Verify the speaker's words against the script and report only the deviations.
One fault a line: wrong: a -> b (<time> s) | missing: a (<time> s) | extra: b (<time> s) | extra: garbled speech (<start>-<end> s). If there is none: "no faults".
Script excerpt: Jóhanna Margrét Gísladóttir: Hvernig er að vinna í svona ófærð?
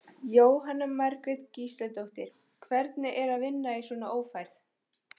no faults